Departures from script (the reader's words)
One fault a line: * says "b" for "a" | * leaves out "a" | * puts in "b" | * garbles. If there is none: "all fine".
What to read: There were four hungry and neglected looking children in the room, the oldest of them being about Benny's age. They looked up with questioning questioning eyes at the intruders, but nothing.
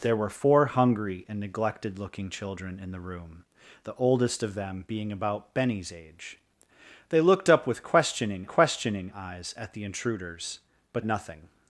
all fine